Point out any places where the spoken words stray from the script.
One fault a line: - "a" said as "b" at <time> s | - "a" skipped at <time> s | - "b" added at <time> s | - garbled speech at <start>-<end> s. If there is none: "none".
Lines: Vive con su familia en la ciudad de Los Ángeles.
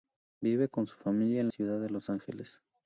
- "la" skipped at 1.5 s